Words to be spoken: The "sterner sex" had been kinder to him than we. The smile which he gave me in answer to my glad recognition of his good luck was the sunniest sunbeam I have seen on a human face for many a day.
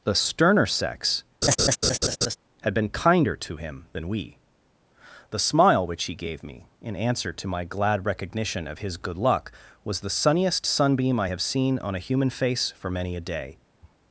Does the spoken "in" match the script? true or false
true